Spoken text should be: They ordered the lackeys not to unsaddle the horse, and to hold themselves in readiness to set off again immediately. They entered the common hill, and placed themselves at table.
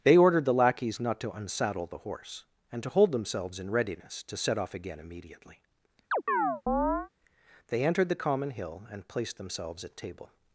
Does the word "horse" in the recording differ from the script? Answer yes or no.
no